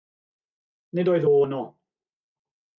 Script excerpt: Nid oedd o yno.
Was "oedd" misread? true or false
false